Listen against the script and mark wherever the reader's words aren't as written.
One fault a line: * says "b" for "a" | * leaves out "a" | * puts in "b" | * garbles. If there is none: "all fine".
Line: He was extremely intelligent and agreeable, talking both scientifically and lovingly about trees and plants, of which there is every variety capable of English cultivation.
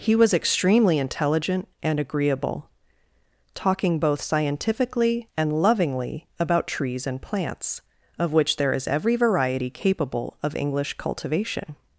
all fine